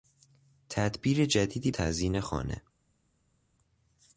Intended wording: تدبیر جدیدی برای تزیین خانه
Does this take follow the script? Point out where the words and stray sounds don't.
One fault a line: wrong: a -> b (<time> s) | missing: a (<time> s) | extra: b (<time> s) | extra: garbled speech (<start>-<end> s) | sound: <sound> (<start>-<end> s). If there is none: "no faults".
missing: برای (1.7 s)